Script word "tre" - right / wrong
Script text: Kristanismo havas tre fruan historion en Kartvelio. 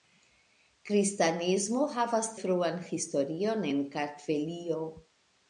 wrong